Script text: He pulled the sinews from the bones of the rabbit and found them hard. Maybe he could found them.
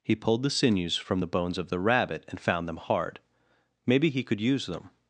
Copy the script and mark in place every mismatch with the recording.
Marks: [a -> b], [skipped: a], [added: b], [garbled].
He pulled the sinews from the bones of the rabbit and found them hard. Maybe he could [found -> use] them.